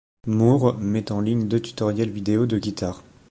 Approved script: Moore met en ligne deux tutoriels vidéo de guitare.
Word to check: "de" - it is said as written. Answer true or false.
true